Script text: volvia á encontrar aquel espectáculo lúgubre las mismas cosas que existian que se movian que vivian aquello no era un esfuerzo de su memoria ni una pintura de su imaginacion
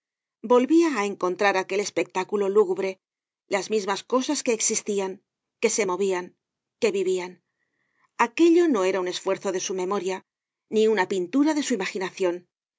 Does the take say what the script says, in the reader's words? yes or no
yes